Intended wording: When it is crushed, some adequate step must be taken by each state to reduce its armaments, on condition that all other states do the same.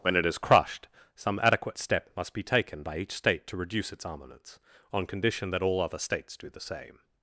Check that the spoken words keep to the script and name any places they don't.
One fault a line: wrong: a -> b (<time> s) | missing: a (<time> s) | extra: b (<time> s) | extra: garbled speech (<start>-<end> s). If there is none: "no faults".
no faults